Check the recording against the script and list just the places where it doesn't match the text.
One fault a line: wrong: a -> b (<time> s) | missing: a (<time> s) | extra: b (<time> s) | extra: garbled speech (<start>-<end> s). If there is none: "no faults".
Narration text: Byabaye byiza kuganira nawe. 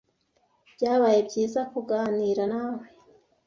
no faults